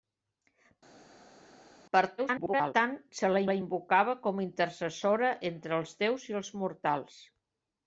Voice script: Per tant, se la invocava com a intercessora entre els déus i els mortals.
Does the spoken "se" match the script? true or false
true